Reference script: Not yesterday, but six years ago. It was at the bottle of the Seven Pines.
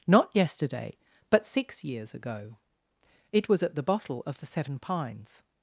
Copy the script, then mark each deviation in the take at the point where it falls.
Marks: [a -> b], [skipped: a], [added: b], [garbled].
Not yesterday, but six years ago. It was at the bottle of the Seven Pines.